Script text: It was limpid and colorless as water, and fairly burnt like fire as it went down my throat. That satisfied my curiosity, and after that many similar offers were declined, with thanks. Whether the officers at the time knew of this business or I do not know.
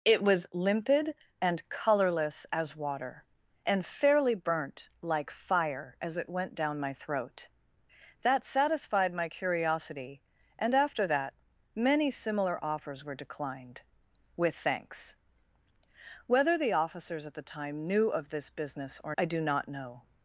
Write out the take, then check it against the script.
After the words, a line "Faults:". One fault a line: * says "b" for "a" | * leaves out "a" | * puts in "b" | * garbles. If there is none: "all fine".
It was limpid and colorless as water, and fairly burnt like fire as it went down my throat. That satisfied my curiosity, and after that many similar offers were declined, with thanks. Whether the officers at the time knew of this business or I do not know.
Faults:
all fine